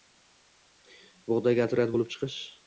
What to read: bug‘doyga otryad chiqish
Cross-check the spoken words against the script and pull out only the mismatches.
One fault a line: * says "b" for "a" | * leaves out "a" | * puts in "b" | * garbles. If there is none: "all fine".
* puts in "bo‘lib"